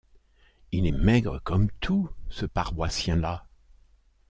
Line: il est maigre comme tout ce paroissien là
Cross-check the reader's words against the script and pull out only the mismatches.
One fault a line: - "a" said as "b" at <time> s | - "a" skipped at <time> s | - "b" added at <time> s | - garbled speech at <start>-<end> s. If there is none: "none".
none